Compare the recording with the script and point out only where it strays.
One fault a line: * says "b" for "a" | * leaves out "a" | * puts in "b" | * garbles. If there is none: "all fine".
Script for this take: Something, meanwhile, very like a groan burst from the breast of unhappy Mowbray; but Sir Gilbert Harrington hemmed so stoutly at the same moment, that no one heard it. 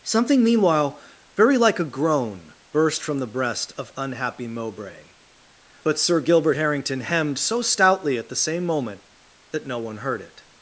all fine